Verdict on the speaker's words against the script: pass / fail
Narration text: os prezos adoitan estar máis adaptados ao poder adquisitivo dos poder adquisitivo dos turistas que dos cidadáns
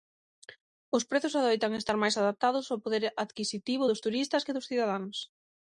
fail